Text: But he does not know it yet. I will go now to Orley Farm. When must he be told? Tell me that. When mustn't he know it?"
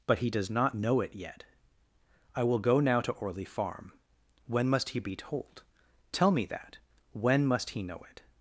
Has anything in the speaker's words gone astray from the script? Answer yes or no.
yes